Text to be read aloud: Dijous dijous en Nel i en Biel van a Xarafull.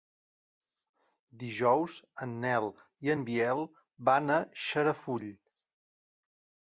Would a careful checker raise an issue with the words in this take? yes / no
yes